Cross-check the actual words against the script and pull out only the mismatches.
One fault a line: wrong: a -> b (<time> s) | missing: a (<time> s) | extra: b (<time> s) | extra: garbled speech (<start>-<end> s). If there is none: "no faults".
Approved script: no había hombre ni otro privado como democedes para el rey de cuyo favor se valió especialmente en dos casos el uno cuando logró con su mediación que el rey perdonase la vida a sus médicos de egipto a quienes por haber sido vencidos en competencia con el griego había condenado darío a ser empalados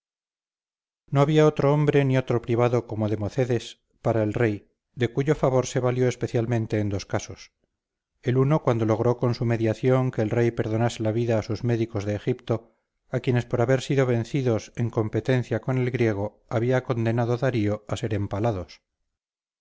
extra: otro (1.4 s)